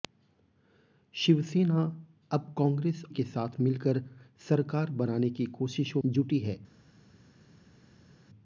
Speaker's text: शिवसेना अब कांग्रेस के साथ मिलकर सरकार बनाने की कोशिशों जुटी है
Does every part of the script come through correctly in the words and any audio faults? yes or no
yes